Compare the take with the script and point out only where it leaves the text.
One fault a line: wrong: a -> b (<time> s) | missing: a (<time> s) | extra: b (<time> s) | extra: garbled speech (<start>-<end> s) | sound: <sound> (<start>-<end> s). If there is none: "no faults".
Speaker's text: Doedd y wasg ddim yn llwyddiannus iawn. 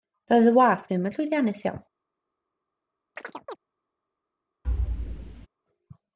sound: chirp (3.2-3.6 s)
sound: thud (4.6-5.5 s)